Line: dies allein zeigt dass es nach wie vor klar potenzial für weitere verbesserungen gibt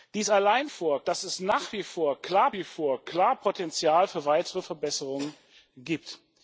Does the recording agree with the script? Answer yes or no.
no